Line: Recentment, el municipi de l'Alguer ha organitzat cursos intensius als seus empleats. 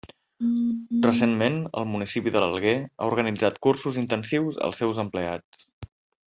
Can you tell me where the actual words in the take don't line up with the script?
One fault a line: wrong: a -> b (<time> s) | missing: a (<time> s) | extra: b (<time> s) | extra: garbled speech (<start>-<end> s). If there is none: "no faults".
no faults